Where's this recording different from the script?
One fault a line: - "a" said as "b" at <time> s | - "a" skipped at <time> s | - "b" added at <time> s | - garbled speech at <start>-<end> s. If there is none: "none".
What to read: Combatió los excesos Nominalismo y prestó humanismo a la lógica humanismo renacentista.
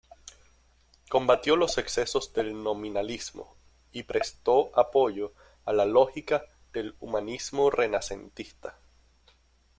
- "del" added at 2.3 s
- "humanismo" said as "apoyo" at 4.7 s
- "del" added at 6.7 s